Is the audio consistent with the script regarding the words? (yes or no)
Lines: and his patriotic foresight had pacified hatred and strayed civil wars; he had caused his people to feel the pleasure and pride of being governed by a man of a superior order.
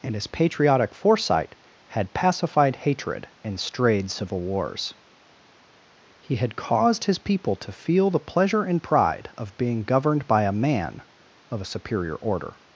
yes